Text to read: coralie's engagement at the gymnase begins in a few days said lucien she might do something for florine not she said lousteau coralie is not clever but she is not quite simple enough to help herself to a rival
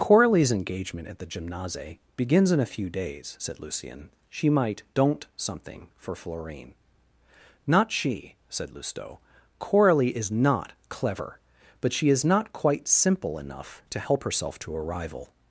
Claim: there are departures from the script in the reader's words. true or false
true